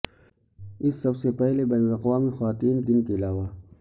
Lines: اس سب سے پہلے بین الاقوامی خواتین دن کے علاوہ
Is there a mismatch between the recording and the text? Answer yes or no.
no